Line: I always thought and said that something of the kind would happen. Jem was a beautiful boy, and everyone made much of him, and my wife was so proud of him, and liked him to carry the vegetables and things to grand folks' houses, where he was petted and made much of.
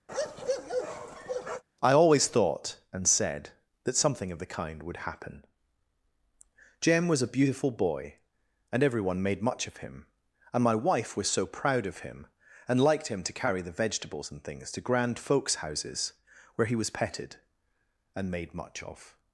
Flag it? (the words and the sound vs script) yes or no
yes